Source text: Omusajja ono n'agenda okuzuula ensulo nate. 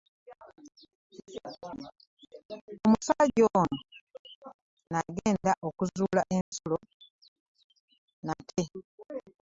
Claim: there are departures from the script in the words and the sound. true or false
true